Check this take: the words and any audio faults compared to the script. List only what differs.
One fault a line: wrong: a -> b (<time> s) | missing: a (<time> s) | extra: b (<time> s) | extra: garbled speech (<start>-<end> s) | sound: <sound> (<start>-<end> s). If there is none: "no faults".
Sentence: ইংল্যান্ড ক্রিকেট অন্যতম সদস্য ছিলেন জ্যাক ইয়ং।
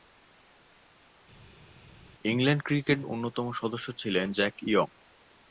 no faults